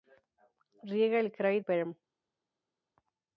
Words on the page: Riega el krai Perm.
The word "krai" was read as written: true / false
true